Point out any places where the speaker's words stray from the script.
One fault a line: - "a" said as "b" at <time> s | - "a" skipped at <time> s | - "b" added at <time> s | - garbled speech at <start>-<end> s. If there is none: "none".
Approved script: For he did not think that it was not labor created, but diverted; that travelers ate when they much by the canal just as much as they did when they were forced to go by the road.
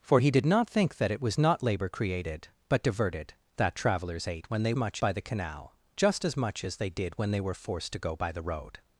none